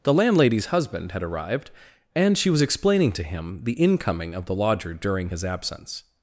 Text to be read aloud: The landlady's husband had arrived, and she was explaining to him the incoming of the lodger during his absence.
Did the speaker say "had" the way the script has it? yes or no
yes